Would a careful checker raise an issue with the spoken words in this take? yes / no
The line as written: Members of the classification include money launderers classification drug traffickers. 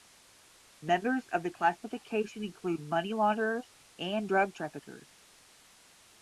yes